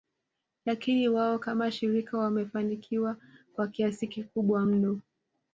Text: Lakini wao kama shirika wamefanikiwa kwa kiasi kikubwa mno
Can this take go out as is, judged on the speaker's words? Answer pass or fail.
pass